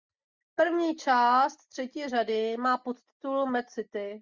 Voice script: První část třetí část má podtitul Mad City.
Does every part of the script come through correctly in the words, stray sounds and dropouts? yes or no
no